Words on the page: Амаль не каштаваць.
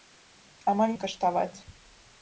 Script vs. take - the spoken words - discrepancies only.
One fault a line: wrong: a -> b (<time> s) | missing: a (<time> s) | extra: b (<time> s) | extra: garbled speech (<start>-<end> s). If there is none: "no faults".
no faults